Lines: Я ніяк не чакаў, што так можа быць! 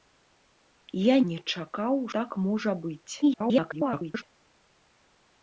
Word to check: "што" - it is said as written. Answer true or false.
false